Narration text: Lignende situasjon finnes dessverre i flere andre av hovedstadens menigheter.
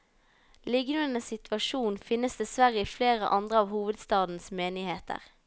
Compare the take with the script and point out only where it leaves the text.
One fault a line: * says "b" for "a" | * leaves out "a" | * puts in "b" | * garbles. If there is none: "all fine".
all fine